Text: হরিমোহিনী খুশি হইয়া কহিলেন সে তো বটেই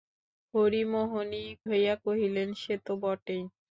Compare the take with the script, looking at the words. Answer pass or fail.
fail